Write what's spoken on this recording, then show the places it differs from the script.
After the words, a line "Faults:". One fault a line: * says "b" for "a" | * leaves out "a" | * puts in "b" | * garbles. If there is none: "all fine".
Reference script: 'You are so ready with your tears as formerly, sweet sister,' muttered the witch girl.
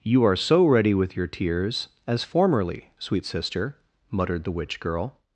'You are so ready with your tears as formerly, sweet sister,' muttered the witch girl.
Faults:
all fine